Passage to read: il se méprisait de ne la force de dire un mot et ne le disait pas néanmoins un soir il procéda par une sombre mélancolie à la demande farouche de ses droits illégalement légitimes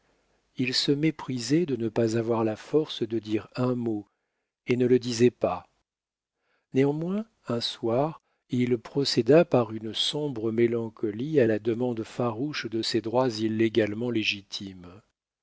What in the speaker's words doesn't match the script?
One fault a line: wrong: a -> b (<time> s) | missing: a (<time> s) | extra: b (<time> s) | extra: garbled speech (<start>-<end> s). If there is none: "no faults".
extra: pas avoir (1.9 s)